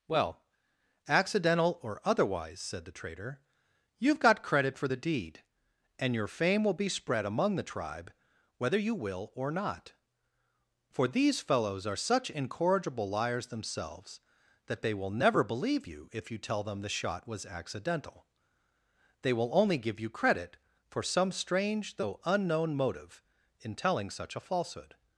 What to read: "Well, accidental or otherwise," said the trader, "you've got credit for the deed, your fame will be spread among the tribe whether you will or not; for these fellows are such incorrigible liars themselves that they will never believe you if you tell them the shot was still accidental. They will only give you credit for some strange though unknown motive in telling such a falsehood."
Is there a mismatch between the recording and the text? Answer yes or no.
yes